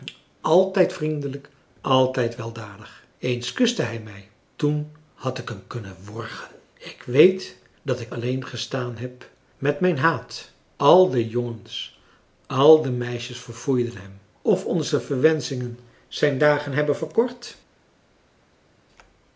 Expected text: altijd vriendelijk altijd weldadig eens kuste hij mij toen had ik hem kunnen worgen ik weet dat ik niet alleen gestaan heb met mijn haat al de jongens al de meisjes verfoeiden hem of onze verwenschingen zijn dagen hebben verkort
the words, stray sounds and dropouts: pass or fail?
fail